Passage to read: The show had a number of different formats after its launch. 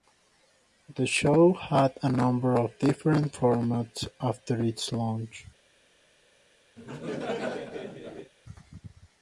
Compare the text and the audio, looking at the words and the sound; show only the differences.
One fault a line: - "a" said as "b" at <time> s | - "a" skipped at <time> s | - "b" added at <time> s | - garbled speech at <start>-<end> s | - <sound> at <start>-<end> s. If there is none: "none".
- laugh at 6.8-8.3 s